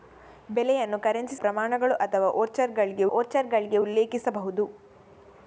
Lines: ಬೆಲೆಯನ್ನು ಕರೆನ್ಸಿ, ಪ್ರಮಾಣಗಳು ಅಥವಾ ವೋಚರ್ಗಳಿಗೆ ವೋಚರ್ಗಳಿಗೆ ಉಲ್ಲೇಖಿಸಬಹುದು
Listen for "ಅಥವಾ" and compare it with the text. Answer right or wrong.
right